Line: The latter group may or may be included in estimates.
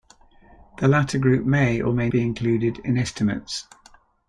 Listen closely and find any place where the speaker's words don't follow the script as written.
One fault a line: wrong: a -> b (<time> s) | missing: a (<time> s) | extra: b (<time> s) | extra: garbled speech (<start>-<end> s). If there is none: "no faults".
no faults